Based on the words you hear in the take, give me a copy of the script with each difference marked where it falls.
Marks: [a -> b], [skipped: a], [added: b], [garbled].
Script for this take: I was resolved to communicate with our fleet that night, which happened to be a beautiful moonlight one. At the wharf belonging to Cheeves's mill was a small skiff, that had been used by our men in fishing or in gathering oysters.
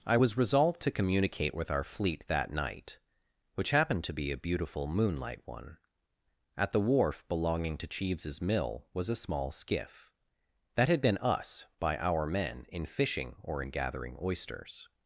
I was resolved to communicate with our fleet that night, which happened to be a beautiful moonlight one. At the wharf belonging to Cheeves's mill was a small skiff, that had been [used -> us] by our men in fishing or in gathering oysters.